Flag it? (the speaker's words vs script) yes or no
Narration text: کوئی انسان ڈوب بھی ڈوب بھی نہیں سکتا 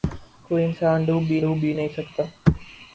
no